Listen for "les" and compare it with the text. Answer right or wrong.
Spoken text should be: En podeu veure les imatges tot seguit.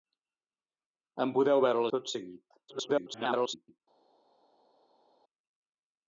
wrong